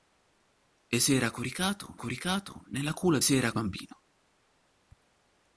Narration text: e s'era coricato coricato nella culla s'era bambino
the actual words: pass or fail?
pass